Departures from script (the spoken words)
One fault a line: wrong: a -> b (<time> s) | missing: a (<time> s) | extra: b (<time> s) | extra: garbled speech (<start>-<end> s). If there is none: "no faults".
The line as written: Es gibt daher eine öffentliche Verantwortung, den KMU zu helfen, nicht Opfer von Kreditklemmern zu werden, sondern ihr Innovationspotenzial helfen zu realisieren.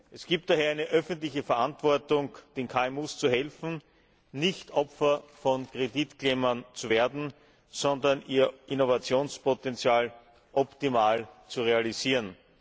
wrong: helfen -> optimal (10.5 s)